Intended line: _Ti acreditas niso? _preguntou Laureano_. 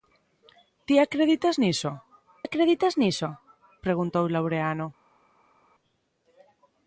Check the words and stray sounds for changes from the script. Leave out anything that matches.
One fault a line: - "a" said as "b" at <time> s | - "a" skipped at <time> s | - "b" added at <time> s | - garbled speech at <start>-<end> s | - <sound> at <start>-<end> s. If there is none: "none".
- "acreditas niso" added at 2.5 s